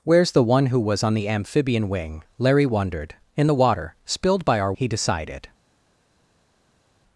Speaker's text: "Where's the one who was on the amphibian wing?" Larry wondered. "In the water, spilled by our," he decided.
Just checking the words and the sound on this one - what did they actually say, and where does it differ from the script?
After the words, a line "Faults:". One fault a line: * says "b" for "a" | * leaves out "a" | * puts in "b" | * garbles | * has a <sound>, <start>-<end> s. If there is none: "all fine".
"Where's the one who was on the amphibian wing?" Larry wondered. "In the water, spilled by our," he decided.
Faults:
all fine